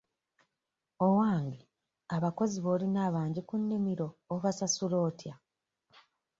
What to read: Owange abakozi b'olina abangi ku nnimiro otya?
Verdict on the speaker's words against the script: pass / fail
fail